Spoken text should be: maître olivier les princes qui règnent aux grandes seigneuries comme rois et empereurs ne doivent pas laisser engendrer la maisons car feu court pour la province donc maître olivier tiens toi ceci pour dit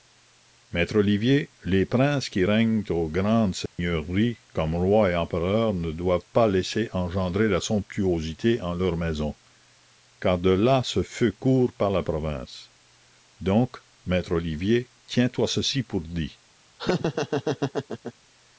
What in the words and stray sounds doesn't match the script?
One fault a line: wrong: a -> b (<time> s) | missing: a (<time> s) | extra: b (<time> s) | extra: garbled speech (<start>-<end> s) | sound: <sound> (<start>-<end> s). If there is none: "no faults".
sound: dropout (3.7-3.8 s)
extra: somptuosité en leurs (7.6 s)
extra: de là ce (10.4 s)
wrong: pour -> par (11.7 s)
sound: laugh (16.8-18.1 s)